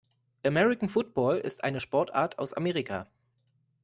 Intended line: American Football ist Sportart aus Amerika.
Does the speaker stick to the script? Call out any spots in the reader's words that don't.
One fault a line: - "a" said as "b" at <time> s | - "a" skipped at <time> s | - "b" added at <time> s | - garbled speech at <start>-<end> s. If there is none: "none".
- "eine" added at 1.6 s